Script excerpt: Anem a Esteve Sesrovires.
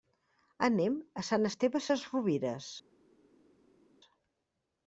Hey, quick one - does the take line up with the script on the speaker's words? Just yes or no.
no